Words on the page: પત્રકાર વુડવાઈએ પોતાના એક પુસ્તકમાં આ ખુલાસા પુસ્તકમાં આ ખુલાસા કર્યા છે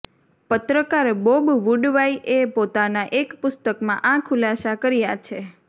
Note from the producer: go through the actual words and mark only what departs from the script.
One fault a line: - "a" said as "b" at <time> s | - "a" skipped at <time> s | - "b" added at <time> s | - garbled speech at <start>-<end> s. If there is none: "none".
- "બોબ" added at 1.2 s
- "પુસ્તકમાં આ ખુલાસા" skipped at 4.8 s